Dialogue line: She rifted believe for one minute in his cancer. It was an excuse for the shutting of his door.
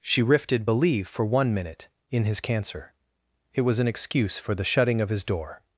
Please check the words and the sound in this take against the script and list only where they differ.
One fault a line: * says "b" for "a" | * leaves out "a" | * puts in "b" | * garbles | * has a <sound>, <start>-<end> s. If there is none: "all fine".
all fine